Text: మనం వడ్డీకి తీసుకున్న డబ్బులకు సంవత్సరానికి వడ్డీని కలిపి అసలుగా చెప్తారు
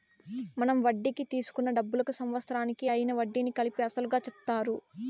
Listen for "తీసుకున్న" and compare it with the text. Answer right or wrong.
right